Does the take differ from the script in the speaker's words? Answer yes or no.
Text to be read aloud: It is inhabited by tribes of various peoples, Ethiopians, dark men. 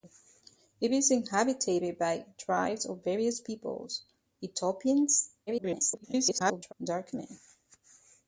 yes